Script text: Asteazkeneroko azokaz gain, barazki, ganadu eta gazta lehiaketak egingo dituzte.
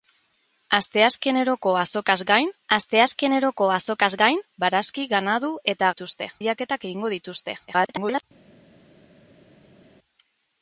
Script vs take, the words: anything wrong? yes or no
yes